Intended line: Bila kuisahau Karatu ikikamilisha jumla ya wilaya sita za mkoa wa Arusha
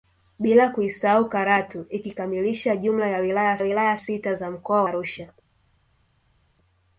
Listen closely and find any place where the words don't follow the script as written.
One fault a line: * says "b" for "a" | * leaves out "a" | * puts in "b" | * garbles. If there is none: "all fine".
* puts in "wilaya"
* leaves out "wa"